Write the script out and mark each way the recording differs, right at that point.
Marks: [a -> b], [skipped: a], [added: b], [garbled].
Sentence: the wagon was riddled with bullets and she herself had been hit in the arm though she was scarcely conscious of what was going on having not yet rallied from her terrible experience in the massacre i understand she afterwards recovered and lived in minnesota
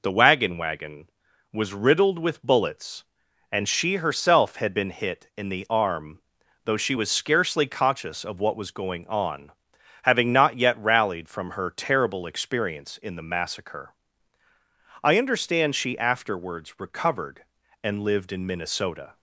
the wagon [added: wagon] was riddled with bullets and she herself had been hit in the arm though she was scarcely conscious of what was going on having not yet rallied from her terrible experience in the massacre i understand she afterwards recovered and lived in minnesota